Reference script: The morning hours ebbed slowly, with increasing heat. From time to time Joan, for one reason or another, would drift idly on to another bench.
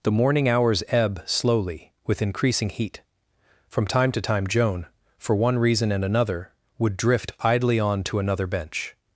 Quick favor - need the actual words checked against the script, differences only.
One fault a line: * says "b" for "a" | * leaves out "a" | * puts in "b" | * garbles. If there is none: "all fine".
* says "ebb" for "ebbed"
* says "and" for "or"